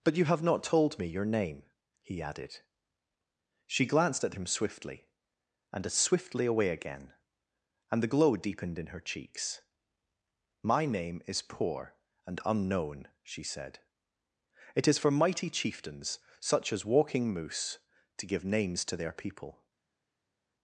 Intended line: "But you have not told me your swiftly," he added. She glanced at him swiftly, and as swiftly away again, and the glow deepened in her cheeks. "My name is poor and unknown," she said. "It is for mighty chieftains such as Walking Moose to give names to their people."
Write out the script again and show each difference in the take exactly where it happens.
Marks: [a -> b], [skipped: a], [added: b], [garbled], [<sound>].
"But you have not told me your [swiftly," -> name] he added. She glanced at him swiftly, and as swiftly away again, and the glow deepened in her cheeks. "My name is poor and unknown," she said. "It is for mighty chieftains such as Walking Moose to give names to their people."